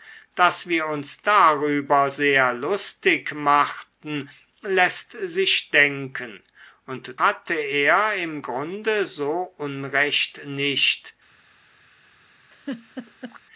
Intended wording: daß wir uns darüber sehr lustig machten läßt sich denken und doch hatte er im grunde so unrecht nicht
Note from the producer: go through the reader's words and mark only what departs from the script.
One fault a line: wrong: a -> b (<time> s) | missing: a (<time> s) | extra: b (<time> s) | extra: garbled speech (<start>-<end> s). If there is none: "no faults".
missing: doch (7.1 s)